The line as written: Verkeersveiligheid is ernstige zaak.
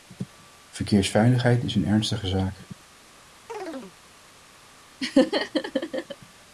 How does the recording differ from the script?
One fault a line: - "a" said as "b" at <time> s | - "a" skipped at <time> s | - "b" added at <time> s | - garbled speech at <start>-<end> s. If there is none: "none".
- "een" added at 1.8 s